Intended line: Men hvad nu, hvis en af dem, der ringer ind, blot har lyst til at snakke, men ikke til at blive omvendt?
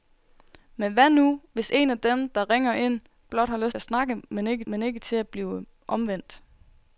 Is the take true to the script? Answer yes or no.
no